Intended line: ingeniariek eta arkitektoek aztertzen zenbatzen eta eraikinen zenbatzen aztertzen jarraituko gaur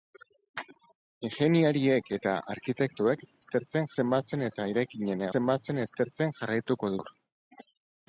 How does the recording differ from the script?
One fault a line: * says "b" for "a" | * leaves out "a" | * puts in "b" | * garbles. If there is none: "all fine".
all fine